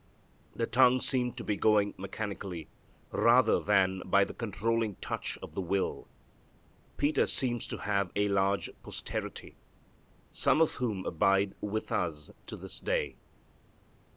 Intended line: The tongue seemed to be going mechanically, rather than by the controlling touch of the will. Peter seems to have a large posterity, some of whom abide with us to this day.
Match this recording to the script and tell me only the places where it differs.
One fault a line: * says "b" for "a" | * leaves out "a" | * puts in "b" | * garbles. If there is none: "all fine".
all fine